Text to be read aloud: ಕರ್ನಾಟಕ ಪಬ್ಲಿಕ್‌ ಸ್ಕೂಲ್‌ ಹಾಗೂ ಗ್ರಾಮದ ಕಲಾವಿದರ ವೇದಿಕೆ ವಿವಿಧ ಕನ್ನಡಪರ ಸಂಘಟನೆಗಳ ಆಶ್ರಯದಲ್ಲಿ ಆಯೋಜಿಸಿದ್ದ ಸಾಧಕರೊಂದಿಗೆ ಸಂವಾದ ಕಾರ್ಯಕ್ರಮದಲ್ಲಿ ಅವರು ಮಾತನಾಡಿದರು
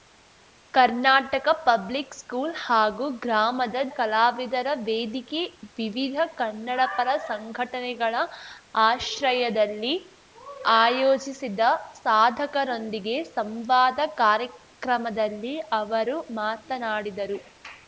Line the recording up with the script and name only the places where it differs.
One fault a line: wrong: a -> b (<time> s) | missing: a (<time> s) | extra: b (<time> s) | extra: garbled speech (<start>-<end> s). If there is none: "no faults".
no faults